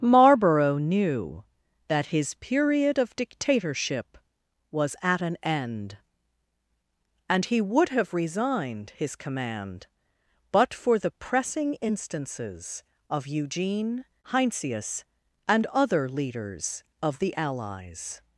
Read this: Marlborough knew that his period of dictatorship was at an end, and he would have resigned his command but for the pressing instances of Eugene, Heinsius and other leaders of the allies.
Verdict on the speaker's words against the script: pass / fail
pass